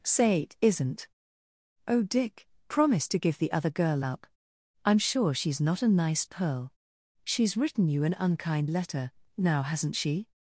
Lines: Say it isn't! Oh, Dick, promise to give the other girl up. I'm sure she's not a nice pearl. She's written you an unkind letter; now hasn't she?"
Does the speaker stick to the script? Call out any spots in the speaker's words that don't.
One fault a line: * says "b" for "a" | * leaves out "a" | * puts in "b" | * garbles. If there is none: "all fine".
all fine